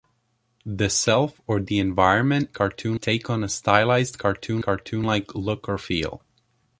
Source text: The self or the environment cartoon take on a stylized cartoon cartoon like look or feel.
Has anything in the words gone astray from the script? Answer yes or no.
no